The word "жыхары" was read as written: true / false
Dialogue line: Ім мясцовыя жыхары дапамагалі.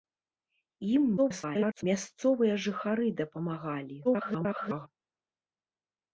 true